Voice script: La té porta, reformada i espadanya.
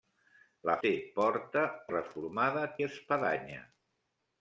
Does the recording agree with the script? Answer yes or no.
yes